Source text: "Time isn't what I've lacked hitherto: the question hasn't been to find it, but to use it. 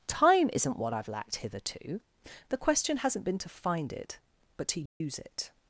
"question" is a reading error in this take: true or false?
false